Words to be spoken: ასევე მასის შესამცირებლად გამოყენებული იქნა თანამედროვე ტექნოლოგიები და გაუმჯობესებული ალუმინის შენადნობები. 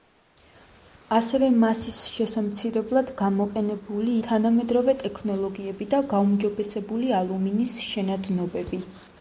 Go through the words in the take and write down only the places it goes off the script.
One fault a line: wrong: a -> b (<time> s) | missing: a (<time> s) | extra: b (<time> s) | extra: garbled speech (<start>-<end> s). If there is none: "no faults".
missing: იქნა (4.2 s)